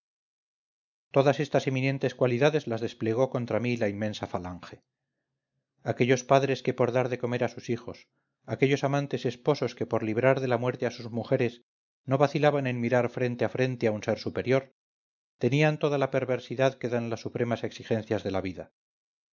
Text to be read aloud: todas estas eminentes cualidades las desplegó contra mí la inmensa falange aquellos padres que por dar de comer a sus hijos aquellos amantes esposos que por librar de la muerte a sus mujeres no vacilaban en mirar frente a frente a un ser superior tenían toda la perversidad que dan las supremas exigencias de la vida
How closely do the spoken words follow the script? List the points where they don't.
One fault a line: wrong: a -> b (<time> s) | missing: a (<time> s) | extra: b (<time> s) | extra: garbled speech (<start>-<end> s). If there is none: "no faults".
no faults